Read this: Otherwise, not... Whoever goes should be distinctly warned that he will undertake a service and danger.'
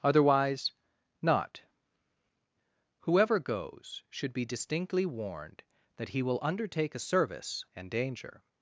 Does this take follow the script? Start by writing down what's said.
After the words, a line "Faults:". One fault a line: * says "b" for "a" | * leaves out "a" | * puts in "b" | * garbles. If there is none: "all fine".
Otherwise, not... Whoever goes should be distinctly warned that he will undertake a service and danger.'
Faults:
all fine